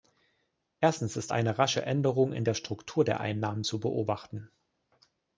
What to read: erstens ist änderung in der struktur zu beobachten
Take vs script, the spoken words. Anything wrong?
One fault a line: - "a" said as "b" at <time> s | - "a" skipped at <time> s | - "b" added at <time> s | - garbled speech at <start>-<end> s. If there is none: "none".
- "eine rasche" added at 1.3 s
- "der einnahmen" added at 3.0 s